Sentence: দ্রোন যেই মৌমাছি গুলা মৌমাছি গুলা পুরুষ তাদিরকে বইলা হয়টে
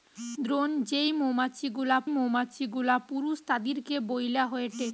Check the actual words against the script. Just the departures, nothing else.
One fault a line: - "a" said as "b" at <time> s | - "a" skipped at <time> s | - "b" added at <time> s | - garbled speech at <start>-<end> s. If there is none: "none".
none